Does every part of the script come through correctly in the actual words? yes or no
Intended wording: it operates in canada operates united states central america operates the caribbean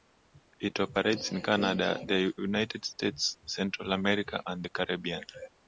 no